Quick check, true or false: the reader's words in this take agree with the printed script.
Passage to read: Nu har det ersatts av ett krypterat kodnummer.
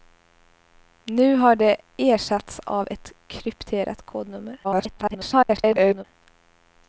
false